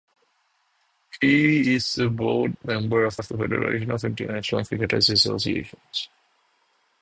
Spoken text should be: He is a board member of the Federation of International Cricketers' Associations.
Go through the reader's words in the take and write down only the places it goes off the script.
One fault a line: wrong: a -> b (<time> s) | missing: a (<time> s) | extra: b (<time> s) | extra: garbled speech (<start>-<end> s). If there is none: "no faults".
extra: of (3.2 s)